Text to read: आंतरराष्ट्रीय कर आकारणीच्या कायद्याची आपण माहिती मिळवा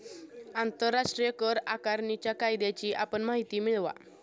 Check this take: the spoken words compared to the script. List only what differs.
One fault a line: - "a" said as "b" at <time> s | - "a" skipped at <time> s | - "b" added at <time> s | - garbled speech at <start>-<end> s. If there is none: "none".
none